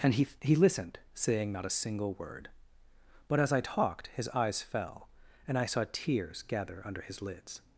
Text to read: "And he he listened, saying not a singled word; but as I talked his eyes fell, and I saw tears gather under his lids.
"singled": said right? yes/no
no